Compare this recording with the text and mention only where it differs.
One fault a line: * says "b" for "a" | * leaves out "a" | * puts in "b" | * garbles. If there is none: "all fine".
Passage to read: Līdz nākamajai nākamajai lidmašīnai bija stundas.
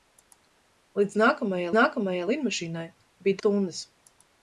all fine